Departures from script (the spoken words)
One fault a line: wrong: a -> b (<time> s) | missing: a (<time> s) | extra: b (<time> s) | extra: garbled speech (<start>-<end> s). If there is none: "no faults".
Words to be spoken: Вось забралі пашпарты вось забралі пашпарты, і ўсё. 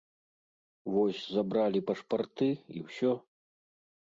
missing: вось забралі пашпарты (2.5 s)